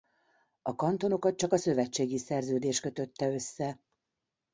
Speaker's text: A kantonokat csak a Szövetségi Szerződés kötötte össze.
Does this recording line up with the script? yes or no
yes